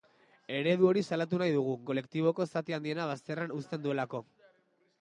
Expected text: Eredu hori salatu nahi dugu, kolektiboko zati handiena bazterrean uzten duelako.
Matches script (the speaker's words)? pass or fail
pass